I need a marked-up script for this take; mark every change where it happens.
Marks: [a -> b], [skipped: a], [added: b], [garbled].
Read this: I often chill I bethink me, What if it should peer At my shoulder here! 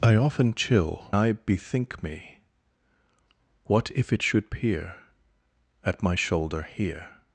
I often chill I bethink me, What if it should peer At my shoulder here!